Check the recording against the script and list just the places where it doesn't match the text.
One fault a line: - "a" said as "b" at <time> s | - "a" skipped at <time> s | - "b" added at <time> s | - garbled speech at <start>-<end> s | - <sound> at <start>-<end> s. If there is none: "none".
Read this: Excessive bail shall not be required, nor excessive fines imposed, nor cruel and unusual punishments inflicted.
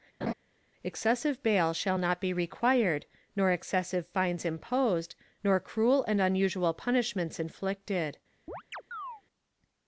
- laugh at 0.2-0.3 s
- chirp at 8.5-9.2 s